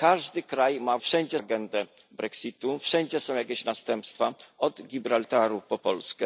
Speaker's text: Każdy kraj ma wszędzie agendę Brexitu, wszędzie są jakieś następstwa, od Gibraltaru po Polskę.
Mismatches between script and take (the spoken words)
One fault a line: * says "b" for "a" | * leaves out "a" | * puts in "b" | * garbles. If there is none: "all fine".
all fine